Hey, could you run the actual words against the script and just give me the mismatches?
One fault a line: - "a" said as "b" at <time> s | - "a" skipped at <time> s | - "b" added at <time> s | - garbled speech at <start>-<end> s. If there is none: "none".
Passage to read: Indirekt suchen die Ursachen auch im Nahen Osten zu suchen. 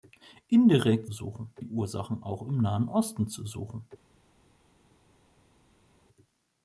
none